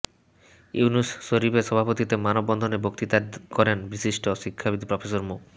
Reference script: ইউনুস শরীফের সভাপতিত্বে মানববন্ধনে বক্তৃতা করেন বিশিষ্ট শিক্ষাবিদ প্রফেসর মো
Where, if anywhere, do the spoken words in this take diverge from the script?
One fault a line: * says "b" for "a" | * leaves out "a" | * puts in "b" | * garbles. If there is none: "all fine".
all fine